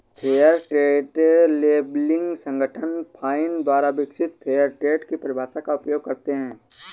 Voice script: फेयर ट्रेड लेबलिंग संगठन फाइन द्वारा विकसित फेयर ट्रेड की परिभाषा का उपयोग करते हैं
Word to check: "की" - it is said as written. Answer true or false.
true